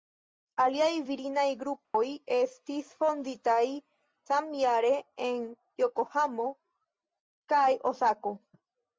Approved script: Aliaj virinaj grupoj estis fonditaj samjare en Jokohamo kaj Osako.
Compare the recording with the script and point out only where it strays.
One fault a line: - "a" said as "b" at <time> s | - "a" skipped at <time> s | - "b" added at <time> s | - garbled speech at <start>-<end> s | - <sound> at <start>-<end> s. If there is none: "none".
- dropout at 1.8-1.9 s